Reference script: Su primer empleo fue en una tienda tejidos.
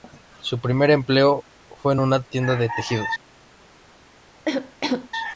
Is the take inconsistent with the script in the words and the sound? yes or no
yes